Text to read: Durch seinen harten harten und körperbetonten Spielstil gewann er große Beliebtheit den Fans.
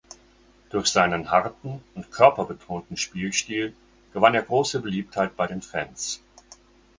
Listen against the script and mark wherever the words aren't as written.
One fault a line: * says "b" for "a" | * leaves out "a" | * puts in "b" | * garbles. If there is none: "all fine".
* leaves out "harten"
* puts in "bei"